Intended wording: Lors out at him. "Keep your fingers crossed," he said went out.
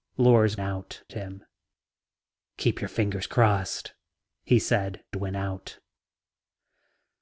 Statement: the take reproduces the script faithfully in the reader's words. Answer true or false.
true